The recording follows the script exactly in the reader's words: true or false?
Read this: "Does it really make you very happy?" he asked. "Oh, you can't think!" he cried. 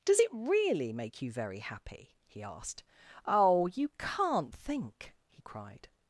true